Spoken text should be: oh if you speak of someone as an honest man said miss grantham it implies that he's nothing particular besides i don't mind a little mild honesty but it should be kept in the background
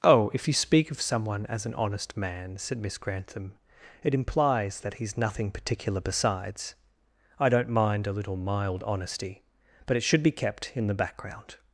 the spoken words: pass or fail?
pass